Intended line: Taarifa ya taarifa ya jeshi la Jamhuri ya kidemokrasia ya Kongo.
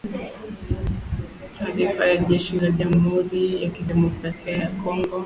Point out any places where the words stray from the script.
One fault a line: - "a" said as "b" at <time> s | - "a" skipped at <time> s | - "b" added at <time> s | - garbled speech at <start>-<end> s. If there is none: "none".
- "taarifa ya" skipped at 2.2 s